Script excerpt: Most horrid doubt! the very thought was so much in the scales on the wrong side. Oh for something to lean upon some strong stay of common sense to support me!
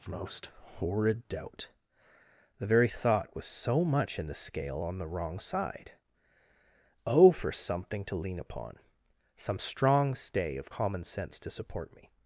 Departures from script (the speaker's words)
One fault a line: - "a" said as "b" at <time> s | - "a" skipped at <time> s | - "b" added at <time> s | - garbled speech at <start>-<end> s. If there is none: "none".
- "scales" said as "scale" at 4.3 s